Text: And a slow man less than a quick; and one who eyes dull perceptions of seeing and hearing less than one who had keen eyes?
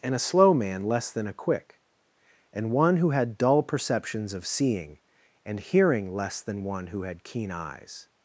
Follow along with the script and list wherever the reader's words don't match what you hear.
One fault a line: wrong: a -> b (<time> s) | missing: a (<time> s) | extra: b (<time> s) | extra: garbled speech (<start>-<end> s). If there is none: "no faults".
wrong: eyes -> had (3.1 s)